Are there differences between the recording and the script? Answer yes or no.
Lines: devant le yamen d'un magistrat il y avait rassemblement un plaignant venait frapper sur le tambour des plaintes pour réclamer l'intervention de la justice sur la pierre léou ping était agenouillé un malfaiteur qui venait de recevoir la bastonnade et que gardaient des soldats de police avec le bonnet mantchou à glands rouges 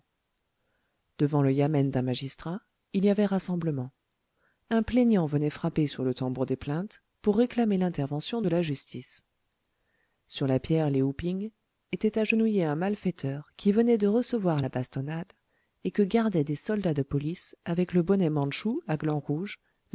no